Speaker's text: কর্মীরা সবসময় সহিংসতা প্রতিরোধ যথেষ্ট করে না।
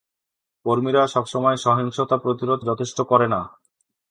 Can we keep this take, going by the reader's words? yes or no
yes